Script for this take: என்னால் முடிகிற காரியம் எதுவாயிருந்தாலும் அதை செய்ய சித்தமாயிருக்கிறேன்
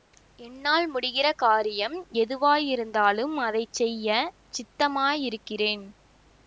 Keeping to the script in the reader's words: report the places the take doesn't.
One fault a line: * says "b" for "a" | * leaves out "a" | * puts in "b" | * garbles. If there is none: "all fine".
all fine